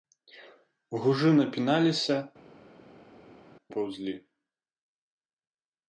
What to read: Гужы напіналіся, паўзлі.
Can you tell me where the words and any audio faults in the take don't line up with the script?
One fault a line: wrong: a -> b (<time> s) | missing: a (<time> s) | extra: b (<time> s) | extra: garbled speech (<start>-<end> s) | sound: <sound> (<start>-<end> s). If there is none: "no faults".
no faults